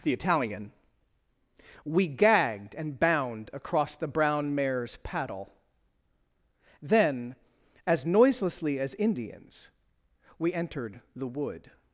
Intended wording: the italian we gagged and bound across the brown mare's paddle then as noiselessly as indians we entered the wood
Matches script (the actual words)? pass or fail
pass